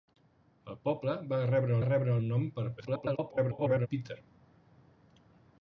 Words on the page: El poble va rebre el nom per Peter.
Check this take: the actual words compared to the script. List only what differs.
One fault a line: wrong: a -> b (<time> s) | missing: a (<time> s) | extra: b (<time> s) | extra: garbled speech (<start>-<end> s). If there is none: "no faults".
extra: rebre (1.9 s)
extra: garbled speech (2.8-3.9 s)